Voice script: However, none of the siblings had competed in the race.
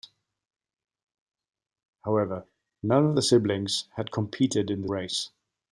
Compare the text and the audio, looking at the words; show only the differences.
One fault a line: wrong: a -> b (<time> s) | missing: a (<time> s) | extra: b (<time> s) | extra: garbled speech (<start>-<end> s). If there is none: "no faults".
no faults